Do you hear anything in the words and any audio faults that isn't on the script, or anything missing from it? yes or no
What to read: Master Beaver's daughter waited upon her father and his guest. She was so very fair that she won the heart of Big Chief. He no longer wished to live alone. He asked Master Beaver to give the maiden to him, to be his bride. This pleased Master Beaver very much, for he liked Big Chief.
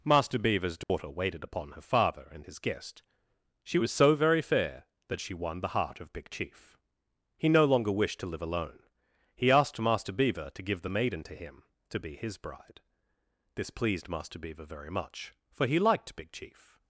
yes